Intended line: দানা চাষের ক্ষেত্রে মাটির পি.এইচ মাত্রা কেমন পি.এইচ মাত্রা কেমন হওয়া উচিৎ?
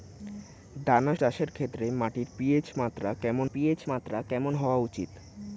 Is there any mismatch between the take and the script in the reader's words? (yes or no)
no